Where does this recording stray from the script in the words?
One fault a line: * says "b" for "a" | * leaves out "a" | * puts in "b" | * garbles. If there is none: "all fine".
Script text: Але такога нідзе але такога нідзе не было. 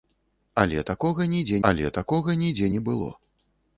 all fine